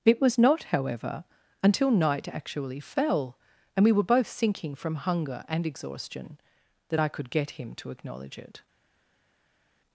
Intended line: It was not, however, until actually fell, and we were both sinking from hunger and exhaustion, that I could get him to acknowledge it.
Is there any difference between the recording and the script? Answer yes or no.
yes